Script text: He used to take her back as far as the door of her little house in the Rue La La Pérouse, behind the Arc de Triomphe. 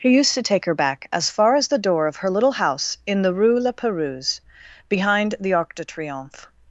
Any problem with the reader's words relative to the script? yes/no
yes